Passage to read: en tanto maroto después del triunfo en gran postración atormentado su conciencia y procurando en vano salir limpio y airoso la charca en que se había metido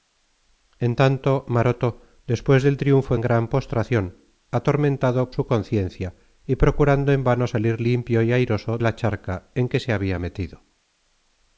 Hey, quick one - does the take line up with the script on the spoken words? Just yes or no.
yes